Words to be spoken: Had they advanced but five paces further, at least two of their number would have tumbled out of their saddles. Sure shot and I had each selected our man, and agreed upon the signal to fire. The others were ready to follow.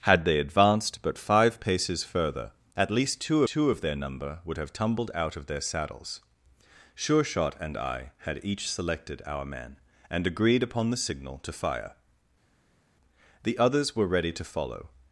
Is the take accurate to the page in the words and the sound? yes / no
no